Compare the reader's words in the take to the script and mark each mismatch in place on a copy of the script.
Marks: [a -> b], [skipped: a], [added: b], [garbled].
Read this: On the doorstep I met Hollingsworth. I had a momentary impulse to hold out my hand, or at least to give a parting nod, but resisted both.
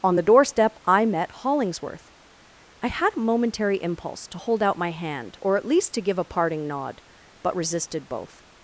On the doorstep I met Hollingsworth. I had a momentary impulse to hold out my hand, or at least to give a parting nod, but resisted both.